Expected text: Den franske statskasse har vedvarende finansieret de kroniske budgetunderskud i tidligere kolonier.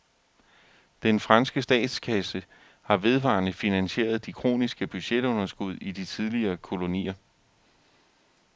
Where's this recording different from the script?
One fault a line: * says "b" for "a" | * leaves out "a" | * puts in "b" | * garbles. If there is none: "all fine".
* puts in "de"